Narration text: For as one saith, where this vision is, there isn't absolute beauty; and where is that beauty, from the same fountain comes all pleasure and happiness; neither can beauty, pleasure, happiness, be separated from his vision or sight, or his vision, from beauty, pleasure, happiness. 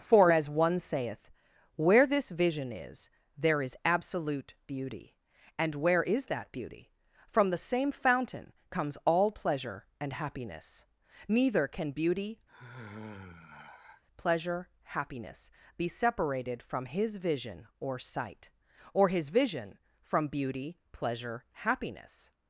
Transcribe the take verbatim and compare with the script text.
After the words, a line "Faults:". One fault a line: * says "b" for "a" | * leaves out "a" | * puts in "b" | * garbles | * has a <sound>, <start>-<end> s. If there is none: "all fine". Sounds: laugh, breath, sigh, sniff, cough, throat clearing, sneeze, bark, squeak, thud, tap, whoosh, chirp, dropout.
For as one saith, where this vision is, there is absolute beauty; and where is that beauty, from the same fountain comes all pleasure and happiness; neither can beauty, pleasure, happiness, be separated from his vision or sight, or his vision, from beauty, pleasure, happiness.
Faults:
* says "is" for "isn't"
* has a sigh, 12.5-14.0 s